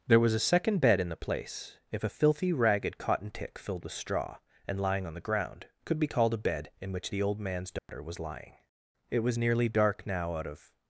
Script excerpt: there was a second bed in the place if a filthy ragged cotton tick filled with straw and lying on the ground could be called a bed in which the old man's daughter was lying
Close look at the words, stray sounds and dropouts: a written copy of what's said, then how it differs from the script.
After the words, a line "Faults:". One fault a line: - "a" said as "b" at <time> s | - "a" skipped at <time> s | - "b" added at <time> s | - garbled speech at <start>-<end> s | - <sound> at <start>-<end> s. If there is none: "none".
there was a second bed in the place if a filthy ragged cotton tick filled with straw and lying on the ground could be called a bed in which the old man's daughter was lying it was nearly dark now out of
Faults:
- dropout at 7.8-7.9 s
- "it was nearly dark now out of" added at 9.1 s